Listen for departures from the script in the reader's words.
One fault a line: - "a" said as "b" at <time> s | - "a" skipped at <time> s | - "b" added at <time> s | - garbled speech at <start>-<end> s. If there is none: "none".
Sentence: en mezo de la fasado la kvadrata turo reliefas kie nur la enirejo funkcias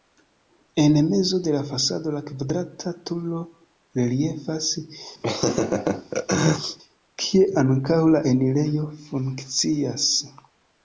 - "nur" said as "ankaŭ" at 7.6 s